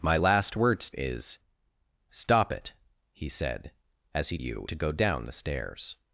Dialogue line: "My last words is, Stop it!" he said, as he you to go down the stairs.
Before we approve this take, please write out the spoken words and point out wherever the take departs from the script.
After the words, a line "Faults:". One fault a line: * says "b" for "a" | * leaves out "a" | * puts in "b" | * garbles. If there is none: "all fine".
"My last words is, Stop it!" he said, as he you to go down the stairs.
Faults:
all fine